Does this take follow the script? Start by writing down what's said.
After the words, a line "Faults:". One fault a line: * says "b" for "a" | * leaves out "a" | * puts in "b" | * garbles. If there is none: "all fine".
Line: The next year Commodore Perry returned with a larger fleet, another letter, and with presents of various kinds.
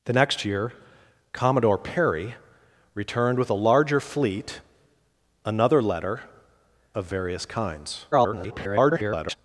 The next year Commodore Perry returned with a larger fleet, another letter, of various kinds. [garbled]
Faults:
* leaves out "and with presents"
* garbles